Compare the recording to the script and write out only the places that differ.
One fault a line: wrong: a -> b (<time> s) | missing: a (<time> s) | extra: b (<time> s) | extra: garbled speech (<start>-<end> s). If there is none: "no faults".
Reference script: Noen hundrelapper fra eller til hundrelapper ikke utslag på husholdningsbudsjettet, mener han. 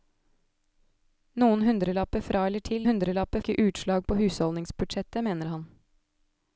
no faults